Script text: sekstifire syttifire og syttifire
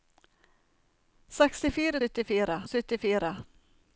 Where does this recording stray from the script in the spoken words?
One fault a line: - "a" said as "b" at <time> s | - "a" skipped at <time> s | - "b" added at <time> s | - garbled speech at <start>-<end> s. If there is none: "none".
none